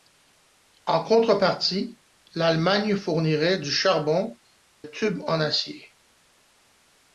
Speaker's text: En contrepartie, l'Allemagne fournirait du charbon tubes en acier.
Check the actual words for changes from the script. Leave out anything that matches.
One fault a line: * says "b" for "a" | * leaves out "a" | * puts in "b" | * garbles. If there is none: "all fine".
all fine